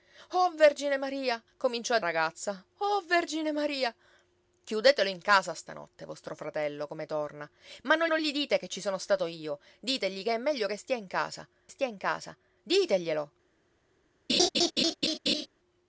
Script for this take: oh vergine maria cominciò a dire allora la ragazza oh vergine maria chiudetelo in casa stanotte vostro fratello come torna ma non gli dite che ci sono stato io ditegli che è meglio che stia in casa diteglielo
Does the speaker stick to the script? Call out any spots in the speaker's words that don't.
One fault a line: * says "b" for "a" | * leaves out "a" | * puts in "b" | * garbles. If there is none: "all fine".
* leaves out "dire allora la"
* puts in "non"
* puts in "stia in casa"